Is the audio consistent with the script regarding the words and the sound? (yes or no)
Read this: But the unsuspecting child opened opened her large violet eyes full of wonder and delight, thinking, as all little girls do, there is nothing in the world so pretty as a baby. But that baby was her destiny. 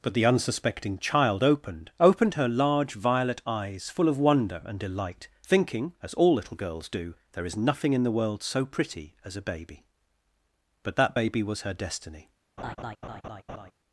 no